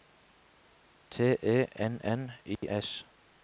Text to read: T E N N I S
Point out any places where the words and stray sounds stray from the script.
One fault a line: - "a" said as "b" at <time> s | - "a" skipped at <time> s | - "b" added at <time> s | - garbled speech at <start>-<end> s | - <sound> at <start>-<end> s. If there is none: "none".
- dropout at 2.6-2.6 s